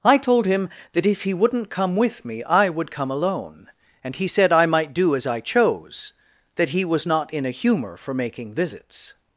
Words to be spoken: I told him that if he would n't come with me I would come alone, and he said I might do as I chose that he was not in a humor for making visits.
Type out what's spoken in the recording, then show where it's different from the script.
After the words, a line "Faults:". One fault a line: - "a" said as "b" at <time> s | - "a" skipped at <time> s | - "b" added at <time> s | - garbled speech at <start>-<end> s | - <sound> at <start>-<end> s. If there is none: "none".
I told him that if he would n't come with me I would come alone, and he said I might do as I chose that he was not in a humor for making visits.
Faults:
none